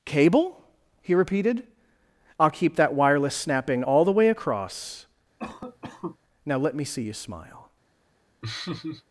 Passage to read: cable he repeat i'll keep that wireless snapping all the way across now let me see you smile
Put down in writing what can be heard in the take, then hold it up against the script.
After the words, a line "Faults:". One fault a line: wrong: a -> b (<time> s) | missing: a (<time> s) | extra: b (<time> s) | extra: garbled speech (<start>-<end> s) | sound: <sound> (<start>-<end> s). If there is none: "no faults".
cable he repeated i'll keep that wireless snapping all the way across now let me see you smile
Faults:
wrong: repeat -> repeated (1.1 s)
sound: cough (5.4-6.2 s)
sound: laugh (8.4-9.0 s)